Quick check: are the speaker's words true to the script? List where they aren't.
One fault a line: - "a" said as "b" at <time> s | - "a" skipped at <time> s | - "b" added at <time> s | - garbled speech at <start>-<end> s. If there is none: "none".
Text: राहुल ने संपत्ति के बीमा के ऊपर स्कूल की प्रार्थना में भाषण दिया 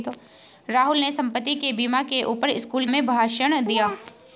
- "की प्रार्थना" skipped at 2.9 s